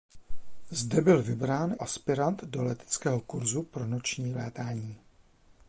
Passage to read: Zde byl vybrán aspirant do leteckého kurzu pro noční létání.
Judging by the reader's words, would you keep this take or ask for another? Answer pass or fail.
pass